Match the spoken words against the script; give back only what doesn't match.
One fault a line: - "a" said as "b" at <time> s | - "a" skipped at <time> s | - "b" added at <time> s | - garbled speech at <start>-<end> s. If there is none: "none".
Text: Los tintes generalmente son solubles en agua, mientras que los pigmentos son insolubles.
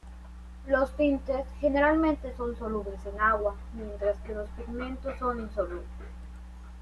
none